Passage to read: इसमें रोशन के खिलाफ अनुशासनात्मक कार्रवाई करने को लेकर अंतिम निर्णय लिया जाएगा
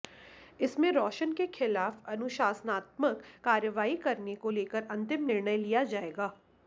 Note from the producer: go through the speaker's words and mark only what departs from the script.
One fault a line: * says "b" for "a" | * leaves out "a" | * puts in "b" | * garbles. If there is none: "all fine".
all fine